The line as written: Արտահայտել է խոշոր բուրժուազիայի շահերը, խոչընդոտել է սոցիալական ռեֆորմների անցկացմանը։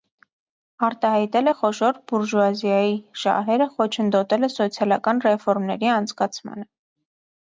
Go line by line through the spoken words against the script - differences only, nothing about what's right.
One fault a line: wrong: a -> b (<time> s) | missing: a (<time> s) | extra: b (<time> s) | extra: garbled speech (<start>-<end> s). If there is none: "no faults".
no faults